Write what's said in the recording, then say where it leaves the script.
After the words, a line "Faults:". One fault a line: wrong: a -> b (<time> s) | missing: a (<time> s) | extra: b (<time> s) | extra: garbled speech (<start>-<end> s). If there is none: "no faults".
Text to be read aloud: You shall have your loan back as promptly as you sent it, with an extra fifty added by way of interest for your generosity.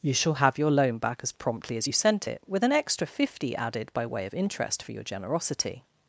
You shall have your loan back as promptly as you sent it, with an extra fifty added by way of interest for your generosity.
Faults:
no faults